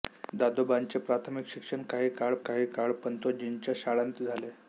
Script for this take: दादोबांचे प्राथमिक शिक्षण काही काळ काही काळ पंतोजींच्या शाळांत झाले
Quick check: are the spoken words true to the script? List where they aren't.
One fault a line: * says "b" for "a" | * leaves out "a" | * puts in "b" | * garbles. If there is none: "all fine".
all fine